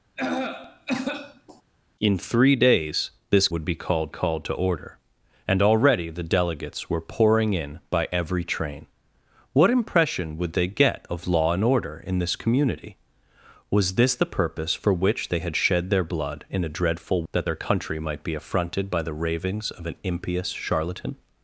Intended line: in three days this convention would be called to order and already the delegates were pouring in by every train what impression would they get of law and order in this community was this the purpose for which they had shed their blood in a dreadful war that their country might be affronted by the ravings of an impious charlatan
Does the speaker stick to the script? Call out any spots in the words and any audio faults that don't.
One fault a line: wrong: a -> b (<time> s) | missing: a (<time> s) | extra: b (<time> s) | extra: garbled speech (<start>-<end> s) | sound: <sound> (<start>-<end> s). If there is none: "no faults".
sound: cough (0.2-1.6 s)
missing: convention (3.5 s)
extra: called (4.1 s)
missing: war (17.2 s)